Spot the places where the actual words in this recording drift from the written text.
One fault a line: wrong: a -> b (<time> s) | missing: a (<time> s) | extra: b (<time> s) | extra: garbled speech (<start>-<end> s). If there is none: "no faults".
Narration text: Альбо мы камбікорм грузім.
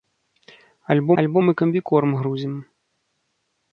extra: альбо (1.2 s)